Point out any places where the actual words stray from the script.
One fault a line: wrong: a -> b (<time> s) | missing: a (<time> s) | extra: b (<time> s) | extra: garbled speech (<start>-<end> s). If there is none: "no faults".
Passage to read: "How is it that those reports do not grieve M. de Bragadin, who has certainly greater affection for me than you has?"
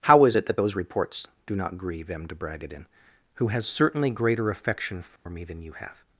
wrong: has -> have (5.7 s)